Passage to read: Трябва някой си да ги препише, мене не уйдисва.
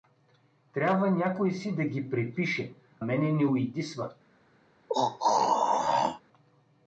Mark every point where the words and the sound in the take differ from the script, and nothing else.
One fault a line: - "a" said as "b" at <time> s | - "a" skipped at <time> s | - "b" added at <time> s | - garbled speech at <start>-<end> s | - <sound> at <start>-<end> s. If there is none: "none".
- throat clearing at 4.9-6.2 s